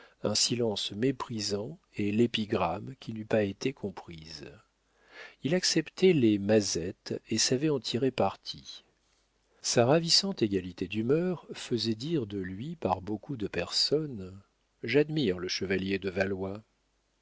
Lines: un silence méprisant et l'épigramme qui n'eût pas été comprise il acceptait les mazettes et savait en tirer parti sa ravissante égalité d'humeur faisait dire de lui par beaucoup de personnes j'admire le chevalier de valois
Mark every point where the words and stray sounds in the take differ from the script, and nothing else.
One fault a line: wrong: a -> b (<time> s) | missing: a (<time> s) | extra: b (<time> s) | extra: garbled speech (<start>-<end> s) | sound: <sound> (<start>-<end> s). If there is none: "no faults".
no faults